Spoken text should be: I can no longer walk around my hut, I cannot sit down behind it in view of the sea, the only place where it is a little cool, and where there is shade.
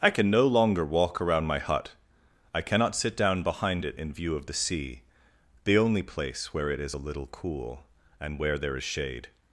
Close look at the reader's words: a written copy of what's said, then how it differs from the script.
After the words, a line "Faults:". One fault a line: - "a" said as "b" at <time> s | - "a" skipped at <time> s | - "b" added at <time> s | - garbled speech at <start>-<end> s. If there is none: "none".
I can no longer walk around my hut, I cannot sit down behind it in view of the sea, the only place where it is a little cool, and where there is shade.
Faults:
none